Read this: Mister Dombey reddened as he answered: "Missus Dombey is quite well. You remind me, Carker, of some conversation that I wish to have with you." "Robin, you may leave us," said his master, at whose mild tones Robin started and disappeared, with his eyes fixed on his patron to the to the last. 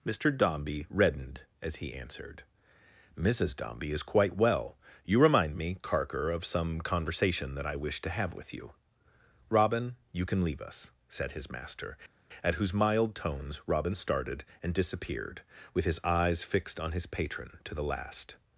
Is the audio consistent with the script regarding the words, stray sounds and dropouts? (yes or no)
no